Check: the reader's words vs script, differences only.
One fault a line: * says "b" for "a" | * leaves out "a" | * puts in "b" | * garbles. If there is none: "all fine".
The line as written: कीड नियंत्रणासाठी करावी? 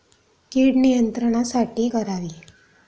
all fine